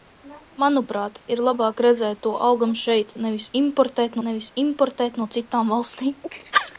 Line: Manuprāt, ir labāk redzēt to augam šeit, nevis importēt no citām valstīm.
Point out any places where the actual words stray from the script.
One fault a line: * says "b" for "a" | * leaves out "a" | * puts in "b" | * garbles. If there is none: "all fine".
* puts in "nevis importēt"